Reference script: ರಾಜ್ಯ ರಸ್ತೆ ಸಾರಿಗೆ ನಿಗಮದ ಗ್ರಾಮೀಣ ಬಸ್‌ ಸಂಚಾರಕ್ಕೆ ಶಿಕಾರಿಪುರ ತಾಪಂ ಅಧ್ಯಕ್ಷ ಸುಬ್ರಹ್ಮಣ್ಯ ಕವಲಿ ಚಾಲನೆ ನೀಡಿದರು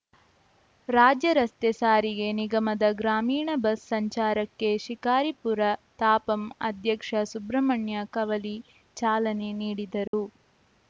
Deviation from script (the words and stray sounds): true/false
true